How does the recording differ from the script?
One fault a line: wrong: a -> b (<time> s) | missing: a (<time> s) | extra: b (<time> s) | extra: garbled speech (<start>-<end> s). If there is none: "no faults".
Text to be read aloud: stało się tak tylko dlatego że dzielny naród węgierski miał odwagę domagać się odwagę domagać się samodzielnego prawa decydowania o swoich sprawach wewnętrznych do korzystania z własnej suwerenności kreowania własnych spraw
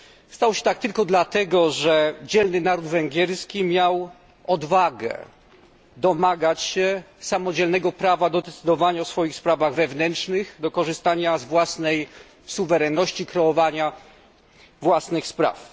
missing: odwagę domagać się (7.0 s)
extra: do (8.3 s)